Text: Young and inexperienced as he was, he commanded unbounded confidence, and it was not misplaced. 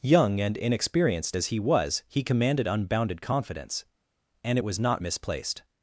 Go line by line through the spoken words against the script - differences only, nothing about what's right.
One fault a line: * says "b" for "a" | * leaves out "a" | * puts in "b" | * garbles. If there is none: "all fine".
all fine